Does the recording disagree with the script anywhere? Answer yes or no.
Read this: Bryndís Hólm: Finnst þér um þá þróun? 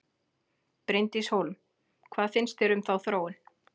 yes